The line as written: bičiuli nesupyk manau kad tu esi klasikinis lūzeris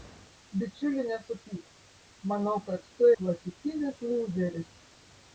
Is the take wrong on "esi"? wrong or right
wrong